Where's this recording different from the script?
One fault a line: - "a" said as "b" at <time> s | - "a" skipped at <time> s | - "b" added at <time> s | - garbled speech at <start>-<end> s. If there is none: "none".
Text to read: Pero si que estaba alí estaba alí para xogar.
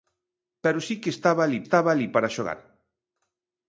none